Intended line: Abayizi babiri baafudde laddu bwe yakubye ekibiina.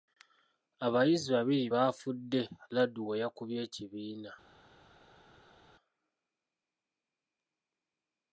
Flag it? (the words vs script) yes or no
no